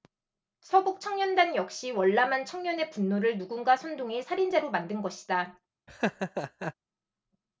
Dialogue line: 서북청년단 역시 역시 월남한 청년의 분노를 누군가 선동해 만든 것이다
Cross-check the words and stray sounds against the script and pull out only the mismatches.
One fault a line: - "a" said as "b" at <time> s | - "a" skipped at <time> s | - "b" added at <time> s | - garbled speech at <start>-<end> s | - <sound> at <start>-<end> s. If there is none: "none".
- "역시" skipped at 1.9 s
- "살인자로" added at 4.2 s
- laugh at 5.9-6.7 s